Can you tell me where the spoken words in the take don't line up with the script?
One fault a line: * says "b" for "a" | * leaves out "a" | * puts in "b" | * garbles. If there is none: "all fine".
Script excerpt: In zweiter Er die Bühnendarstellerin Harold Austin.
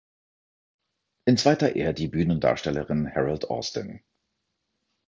all fine